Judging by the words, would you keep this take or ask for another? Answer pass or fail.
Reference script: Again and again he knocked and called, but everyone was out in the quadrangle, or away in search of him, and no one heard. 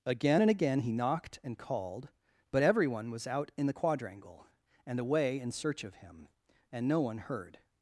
fail